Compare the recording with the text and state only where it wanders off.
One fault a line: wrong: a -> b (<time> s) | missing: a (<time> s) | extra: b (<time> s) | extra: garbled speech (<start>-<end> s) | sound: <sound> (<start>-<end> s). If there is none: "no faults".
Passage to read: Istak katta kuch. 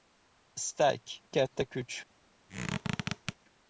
sound: squeak (2.5-3.4 s)